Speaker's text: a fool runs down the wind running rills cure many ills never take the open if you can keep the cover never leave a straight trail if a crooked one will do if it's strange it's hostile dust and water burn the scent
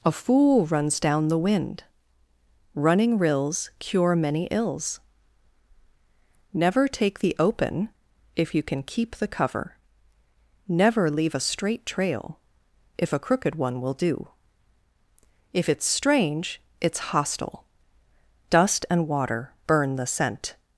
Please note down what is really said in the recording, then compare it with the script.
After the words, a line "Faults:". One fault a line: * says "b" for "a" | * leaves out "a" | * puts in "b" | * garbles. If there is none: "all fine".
a fool runs down the wind running rills cure many ills never take the open if you can keep the cover never leave a straight trail if a crooked one will do if it's strange it's hostile dust and water burn the scent
Faults:
all fine